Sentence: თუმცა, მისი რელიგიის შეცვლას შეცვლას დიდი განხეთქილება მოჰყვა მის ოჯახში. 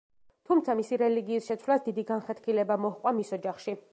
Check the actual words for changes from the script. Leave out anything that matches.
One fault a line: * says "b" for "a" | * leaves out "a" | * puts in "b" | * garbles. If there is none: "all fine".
* leaves out "შეცვლას"